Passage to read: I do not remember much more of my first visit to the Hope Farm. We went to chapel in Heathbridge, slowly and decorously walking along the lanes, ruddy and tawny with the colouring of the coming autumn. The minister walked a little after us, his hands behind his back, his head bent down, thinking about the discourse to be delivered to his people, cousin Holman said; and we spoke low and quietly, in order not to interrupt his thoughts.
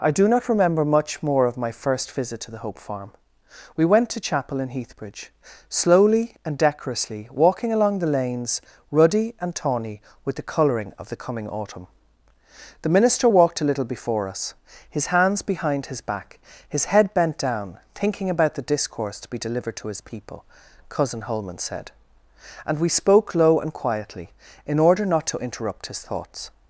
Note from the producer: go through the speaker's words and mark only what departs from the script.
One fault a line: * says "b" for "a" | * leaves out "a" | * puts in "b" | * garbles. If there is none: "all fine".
* says "before" for "after"